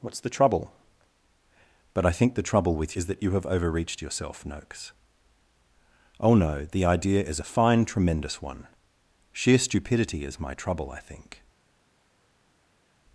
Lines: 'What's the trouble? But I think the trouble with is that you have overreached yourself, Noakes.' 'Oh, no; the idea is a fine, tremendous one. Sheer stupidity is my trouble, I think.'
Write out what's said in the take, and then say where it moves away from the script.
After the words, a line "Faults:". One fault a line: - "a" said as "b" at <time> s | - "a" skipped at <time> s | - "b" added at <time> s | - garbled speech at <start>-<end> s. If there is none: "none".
'What's the trouble? But I think the trouble with is that you have overreached yourself, Noakes.' 'Oh, no; the idea is a fine, tremendous one. Sheer stupidity is my trouble, I think.'
Faults:
none